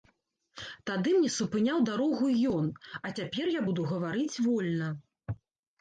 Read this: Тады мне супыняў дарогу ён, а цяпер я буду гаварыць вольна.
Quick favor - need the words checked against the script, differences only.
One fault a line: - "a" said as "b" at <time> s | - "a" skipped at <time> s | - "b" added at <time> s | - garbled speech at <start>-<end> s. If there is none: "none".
none